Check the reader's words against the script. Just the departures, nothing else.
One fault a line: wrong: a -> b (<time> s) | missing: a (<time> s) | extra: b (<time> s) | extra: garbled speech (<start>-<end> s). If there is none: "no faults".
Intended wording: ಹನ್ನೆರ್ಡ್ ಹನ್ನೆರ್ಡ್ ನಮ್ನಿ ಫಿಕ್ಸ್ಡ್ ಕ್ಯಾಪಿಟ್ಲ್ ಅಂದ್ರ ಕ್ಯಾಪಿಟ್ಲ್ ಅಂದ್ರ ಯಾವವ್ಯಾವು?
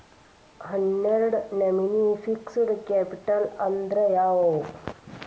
missing: ಹನ್ನೆರ್ಡ್ (1.4 s)
missing: ಕ್ಯಾಪಿಟ್ಲ್ ಅಂದ್ರ (4.0 s)